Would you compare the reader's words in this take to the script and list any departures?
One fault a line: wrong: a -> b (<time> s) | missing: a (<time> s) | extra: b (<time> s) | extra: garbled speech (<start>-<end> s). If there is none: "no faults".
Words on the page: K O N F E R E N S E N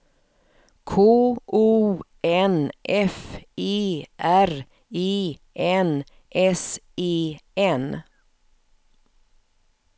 no faults